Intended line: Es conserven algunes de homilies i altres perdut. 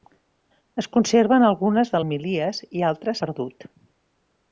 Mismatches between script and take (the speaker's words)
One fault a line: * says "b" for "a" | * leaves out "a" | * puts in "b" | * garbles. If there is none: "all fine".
all fine